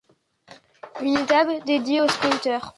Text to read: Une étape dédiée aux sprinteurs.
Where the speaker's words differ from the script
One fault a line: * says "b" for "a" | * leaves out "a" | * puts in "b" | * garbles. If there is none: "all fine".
all fine